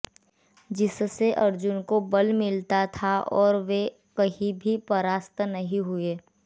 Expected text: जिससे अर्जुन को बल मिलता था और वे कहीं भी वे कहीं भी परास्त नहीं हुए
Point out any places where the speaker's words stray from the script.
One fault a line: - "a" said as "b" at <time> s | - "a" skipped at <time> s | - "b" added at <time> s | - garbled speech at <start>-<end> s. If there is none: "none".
- "वे कहीं भी" skipped at 4.8 s